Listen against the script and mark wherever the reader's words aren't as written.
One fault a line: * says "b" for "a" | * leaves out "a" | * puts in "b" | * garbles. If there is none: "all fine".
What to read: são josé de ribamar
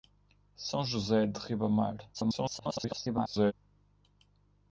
* garbles